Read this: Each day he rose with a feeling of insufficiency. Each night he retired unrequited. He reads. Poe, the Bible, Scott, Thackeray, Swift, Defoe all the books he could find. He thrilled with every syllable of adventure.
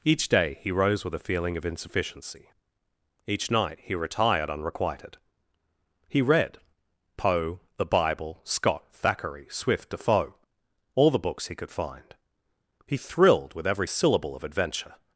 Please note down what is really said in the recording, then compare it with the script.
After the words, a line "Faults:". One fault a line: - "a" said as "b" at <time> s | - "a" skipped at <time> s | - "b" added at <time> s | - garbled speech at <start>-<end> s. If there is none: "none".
Each day he rose with a feeling of insufficiency. Each night he retired unrequited. He read. Poe, the Bible, Scott, Thackeray, Swift, Defoe all the books he could find. He thrilled with every syllable of adventure.
Faults:
- "reads" said as "read" at 6.2 s